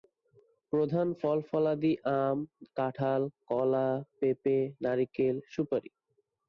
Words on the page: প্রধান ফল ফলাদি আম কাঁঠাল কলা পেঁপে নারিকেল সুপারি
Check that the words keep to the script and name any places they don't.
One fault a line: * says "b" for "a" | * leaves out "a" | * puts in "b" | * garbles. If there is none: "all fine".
all fine